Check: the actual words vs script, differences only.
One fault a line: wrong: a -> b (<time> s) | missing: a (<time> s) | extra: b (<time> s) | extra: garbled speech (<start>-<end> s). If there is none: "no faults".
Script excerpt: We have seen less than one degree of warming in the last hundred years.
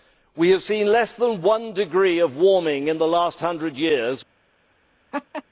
no faults